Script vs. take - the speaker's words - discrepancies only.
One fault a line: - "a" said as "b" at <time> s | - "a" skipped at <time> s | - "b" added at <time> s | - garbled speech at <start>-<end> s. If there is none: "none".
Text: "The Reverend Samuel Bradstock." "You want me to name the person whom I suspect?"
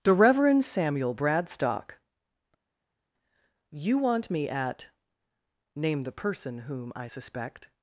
- "to" said as "at" at 4.5 s